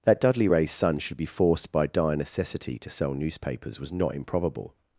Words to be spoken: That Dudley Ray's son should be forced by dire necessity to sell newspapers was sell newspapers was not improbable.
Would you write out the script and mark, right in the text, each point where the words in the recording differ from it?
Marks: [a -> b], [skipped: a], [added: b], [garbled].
That Dudley Ray's son should be forced by dire necessity to sell newspapers was [skipped: sell newspapers was] not improbable.